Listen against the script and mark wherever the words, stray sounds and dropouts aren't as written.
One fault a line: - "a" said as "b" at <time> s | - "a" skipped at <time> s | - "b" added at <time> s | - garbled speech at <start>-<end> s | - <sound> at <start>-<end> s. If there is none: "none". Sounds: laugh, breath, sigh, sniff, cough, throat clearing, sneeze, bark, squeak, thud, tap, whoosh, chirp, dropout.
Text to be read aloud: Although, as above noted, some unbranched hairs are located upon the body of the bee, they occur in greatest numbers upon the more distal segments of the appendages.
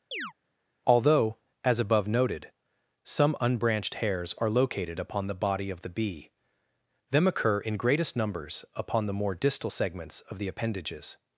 - chirp at 0.1-0.3 s
- "they" said as "them" at 7.1 s